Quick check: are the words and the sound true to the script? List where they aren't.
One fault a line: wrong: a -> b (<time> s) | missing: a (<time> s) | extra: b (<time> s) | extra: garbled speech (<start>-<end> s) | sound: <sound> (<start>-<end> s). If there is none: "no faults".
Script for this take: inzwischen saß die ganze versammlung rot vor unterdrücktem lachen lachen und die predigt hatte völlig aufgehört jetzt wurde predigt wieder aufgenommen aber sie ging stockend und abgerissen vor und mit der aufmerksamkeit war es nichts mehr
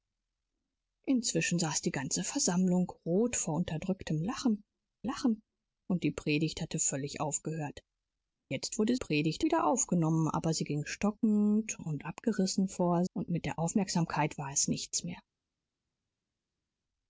no faults